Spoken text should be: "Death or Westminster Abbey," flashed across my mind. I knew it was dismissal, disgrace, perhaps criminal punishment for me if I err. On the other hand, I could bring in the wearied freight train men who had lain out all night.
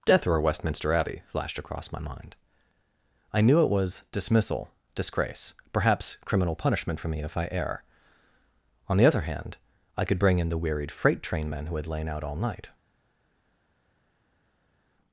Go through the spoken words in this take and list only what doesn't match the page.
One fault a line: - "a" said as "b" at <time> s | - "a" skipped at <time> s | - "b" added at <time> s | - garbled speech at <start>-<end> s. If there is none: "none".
none